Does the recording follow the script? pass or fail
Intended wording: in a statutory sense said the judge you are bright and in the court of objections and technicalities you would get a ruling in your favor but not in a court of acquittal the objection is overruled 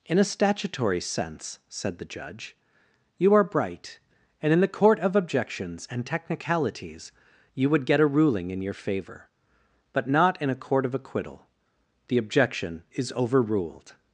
pass